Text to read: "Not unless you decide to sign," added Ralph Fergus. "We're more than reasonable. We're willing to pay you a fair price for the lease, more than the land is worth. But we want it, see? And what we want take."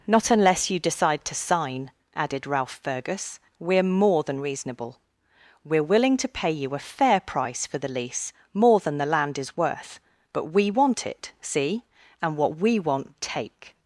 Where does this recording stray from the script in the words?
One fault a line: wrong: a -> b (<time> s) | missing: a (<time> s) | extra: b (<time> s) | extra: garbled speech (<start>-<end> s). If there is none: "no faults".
no faults